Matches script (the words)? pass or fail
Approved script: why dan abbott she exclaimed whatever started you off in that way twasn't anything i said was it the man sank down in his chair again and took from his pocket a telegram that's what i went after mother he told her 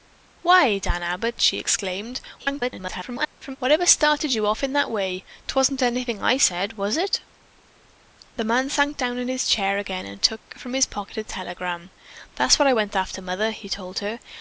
fail